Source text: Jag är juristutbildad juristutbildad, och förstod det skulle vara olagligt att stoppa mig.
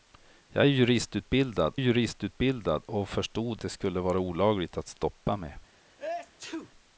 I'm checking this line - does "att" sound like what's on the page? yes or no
yes